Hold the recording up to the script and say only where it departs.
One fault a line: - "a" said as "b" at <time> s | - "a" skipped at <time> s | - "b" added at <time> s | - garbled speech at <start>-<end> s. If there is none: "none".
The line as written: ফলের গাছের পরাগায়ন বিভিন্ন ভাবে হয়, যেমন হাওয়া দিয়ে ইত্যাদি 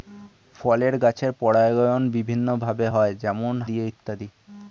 - "হাওয়া" skipped at 3.5 s